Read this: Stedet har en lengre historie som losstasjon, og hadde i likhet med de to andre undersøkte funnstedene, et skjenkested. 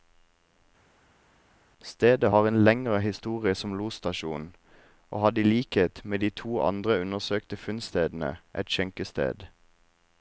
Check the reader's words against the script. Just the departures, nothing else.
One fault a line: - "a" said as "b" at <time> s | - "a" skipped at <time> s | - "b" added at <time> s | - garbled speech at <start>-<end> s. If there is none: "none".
none